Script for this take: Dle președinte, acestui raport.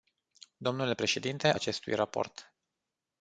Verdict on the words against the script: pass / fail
pass